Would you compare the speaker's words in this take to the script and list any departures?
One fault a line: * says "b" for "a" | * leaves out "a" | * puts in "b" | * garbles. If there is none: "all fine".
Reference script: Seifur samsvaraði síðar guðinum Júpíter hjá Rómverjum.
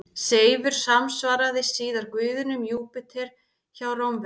all fine